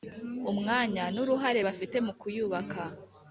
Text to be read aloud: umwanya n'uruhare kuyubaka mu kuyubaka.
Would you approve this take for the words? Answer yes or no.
no